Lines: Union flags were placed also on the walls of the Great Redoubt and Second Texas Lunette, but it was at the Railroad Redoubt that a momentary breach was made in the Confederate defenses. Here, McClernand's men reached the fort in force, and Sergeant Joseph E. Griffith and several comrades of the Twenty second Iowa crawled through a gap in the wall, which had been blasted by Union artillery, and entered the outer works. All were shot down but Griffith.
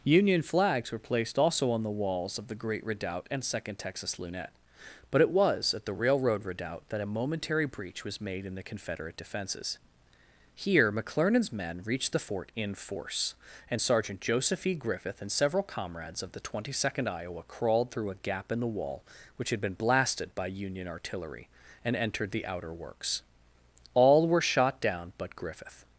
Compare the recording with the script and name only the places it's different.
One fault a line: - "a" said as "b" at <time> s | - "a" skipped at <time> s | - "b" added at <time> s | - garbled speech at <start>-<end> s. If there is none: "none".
none